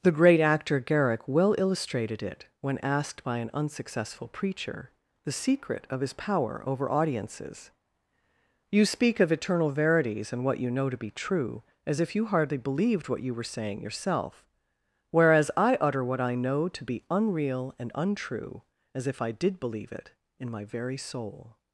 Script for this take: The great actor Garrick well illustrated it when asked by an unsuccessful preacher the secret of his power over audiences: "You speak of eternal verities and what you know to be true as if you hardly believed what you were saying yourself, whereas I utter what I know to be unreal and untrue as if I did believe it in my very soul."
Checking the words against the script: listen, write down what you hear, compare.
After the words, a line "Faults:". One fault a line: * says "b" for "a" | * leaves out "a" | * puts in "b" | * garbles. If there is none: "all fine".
The great actor Garrick well illustrated it when asked by an unsuccessful preacher the secret of his power over audiences: "You speak of eternal verities and what you know to be true as if you hardly believed what you were saying yourself, whereas I utter what I know to be unreal and untrue as if I did believe it in my very soul."
Faults:
all fine